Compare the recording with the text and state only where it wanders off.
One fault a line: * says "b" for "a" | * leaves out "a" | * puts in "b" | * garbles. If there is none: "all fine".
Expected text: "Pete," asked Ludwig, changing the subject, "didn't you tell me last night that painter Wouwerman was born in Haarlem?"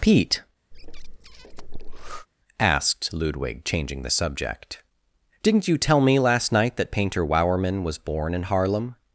all fine